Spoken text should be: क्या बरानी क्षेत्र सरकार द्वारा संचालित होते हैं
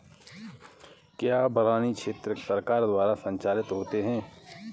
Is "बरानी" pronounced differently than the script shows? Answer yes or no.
no